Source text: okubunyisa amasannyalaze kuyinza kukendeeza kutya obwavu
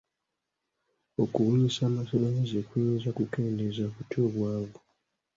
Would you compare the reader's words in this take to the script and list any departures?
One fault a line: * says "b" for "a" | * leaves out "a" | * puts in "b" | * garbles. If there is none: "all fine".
all fine